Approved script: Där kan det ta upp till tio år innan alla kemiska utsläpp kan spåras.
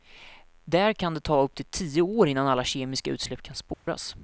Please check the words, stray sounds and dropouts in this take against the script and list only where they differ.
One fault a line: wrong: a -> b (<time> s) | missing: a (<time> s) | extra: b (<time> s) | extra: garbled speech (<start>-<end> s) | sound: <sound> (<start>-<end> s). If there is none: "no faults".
sound: dropout (3.7-3.9 s)